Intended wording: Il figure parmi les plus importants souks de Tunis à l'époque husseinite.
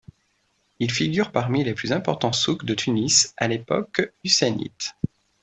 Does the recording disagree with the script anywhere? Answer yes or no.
no